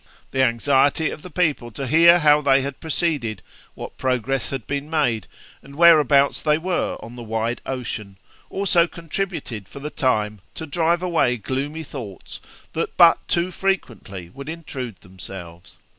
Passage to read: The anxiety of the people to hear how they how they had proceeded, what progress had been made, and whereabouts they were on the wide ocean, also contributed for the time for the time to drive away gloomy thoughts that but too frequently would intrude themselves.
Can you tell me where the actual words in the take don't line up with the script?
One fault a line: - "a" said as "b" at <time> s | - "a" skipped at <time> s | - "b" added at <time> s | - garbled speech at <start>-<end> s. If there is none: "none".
- "how they" skipped at 2.6 s
- "for the time" skipped at 10.4 s